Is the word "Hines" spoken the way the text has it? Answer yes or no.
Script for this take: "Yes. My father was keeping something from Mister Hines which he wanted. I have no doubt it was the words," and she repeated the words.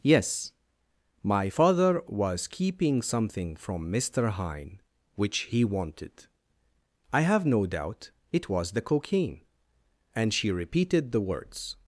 no